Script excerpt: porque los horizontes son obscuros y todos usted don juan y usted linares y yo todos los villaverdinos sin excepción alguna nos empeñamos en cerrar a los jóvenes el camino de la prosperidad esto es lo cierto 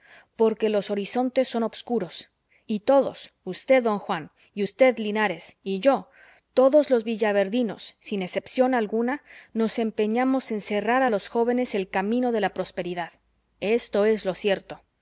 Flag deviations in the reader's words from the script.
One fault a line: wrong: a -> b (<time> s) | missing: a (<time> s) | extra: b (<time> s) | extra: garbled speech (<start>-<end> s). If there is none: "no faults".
no faults